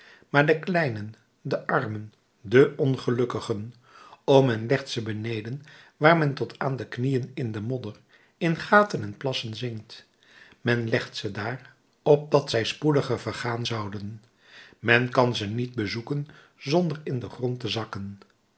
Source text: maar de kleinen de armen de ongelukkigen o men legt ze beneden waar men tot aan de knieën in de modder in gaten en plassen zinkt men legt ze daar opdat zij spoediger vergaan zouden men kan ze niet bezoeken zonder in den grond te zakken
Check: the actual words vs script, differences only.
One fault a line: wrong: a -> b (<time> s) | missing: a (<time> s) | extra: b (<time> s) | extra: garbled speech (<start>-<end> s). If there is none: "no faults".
no faults